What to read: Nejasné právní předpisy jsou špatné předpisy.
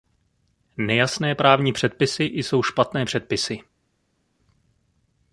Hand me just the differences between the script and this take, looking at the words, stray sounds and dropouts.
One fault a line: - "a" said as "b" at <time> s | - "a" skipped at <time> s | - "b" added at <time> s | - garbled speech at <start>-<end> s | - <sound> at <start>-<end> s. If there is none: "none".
none